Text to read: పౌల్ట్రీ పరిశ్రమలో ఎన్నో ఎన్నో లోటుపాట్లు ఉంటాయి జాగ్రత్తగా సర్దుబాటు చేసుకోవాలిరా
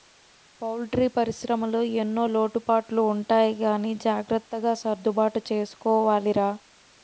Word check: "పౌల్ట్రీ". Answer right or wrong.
right